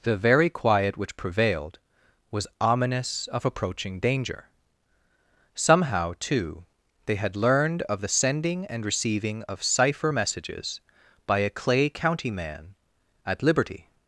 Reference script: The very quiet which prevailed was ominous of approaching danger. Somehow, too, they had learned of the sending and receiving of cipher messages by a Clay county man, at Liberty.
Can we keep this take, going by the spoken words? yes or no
yes